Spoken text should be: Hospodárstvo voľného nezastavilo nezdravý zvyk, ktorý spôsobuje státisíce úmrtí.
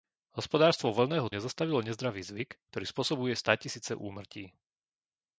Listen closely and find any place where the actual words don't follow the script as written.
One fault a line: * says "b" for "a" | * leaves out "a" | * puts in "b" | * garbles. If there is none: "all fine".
all fine